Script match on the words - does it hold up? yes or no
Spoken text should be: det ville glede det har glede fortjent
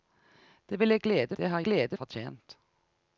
yes